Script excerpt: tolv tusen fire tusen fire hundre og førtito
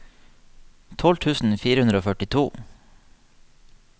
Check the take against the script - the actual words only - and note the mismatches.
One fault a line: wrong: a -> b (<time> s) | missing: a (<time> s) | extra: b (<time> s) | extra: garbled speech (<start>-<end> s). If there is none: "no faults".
missing: tusen fire (1.8 s)